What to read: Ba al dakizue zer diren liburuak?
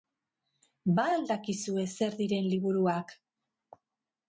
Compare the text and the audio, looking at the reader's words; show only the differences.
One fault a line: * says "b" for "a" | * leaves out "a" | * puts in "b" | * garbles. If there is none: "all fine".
all fine